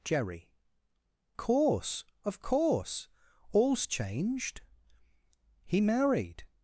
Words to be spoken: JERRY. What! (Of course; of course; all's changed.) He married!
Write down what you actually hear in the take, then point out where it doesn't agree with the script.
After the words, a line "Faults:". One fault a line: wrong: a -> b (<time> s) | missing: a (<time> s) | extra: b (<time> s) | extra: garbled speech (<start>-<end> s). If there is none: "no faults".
JERRY. Course; of course; all's changed.) He married!
Faults:
missing: What Of (0.5 s)